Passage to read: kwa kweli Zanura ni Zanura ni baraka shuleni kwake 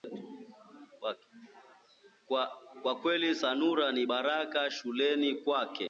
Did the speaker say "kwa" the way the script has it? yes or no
yes